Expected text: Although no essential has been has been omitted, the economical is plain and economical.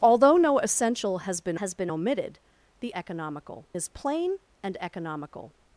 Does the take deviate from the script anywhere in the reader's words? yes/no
no